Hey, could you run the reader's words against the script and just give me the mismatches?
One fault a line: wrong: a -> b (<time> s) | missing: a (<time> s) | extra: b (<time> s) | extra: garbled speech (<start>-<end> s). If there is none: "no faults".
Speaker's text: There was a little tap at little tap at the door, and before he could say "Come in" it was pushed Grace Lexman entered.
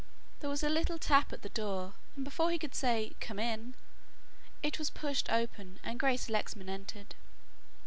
missing: little tap at (1.4 s)
extra: open and (5.3 s)